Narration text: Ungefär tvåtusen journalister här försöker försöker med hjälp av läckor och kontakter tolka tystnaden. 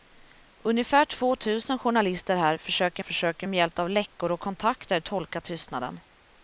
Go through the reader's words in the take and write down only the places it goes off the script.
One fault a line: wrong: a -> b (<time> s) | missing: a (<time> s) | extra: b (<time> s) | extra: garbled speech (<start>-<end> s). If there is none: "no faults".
no faults